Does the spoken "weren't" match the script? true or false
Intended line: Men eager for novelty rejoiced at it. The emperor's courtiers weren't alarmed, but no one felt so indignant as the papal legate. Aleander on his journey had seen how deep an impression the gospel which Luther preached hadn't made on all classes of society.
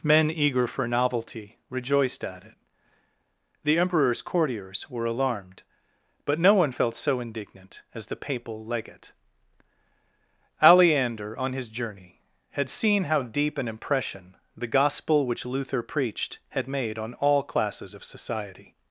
false